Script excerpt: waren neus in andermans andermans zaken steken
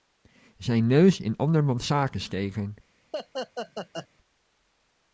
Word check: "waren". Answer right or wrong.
wrong